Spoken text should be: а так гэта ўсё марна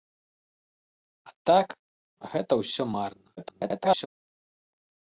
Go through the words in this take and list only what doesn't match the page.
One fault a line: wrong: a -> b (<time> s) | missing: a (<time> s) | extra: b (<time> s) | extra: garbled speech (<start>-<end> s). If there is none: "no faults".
extra: garbled speech (3.4-4.1 s)